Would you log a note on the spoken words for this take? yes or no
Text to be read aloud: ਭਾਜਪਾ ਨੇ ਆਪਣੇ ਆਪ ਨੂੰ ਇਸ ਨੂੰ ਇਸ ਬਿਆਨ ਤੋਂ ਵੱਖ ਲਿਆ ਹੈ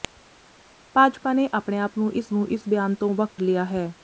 no